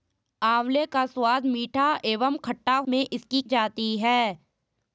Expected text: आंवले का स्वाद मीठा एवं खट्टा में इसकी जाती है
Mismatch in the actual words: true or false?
false